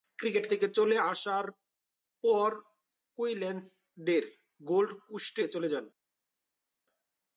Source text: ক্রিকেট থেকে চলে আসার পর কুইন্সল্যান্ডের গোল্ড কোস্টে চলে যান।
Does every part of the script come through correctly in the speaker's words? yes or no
yes